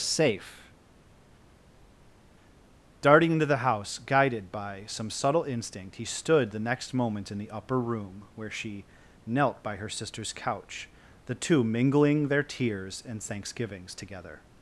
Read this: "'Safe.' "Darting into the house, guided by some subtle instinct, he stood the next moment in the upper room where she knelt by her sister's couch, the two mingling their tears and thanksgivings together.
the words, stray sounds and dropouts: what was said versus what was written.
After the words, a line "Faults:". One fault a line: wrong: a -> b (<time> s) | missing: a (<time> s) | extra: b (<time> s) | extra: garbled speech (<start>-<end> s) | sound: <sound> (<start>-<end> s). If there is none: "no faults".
"'Safe.' "Darting into the house, guided by some subtle instinct, he stood the next moment in the upper room where she knelt by her sister's couch, the two mingling their tears and thanksgivings together.
Faults:
no faults